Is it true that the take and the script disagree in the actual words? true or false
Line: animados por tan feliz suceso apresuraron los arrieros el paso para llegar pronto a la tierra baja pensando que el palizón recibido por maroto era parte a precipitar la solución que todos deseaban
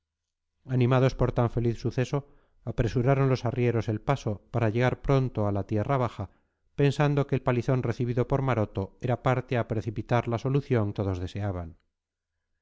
true